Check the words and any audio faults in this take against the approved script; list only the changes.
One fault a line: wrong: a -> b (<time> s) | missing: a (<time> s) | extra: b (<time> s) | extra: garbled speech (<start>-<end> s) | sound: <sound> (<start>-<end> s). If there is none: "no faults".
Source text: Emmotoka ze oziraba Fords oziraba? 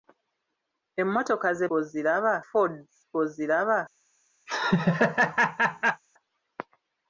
sound: laugh (4.5-6.0 s)